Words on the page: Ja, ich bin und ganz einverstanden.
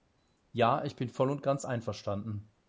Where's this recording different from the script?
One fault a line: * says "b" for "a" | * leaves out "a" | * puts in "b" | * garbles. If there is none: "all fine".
* puts in "voll"